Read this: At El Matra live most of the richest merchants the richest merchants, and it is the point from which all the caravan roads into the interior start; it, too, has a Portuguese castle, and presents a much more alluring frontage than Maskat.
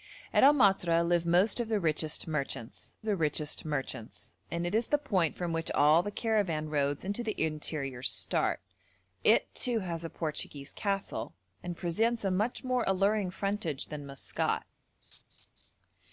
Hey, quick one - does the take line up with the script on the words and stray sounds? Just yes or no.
no